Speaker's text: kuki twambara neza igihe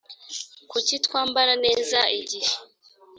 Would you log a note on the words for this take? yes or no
no